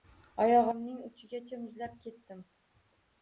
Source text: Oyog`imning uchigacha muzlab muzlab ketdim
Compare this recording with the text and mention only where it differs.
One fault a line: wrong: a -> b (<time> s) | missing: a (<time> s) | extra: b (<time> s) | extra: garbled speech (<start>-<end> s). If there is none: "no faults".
missing: muzlab (2.0 s)